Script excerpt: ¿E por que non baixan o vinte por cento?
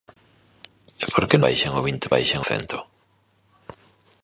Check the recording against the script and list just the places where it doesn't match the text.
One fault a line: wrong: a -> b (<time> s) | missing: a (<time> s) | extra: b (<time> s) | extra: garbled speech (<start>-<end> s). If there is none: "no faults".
missing: non (1.4 s)
wrong: por -> baixan (2.1 s)